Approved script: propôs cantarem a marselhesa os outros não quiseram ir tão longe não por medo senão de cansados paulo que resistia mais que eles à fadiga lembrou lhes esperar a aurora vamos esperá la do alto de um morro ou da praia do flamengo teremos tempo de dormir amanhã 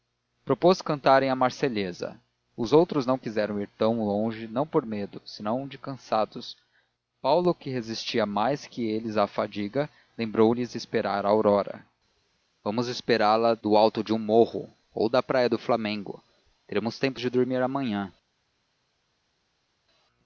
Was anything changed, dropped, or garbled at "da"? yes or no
no